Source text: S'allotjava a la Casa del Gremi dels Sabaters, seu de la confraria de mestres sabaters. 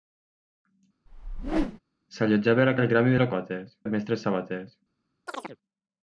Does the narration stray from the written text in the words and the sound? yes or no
yes